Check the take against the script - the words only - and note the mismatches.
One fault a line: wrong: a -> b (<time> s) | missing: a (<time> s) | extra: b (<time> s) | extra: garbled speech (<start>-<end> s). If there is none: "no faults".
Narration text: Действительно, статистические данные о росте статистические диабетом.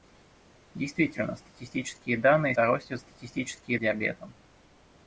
no faults